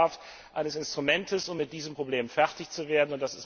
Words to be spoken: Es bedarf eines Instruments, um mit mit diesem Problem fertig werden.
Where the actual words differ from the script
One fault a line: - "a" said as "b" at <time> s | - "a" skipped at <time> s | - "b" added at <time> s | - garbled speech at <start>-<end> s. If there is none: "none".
- "mit" skipped at 1.7 s
- "zu" added at 2.7 s